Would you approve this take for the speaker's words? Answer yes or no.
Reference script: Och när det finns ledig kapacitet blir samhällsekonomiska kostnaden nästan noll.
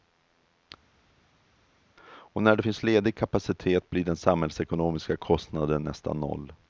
no